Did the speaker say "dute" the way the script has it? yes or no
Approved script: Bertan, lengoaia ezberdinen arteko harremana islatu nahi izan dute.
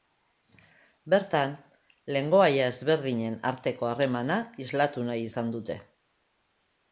yes